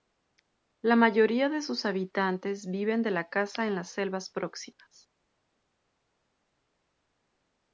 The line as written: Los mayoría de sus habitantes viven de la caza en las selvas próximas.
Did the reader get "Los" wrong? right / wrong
wrong